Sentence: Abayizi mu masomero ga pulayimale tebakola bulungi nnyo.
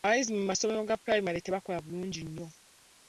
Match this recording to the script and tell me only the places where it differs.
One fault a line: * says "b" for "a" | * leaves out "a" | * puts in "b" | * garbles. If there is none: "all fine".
all fine